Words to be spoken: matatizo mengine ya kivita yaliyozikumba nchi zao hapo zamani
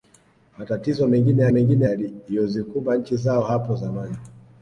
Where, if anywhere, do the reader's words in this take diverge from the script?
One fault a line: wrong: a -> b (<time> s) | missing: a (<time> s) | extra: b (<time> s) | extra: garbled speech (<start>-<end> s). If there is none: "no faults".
wrong: kivita -> mengine (1.5 s)